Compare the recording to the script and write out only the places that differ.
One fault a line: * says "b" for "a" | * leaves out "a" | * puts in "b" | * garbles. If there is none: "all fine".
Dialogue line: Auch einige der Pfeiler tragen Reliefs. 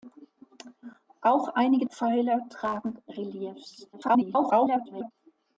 * leaves out "der"
* garbles